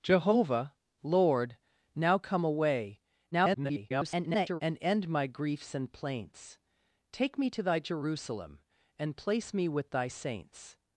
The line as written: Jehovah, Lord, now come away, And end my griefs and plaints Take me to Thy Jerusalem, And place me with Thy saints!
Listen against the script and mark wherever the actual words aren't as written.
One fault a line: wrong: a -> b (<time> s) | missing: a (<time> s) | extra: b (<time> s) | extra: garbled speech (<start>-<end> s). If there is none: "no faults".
extra: garbled speech (3.3-4.6 s)